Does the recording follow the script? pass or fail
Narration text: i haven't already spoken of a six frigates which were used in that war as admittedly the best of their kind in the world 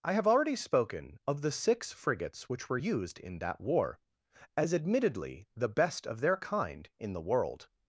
fail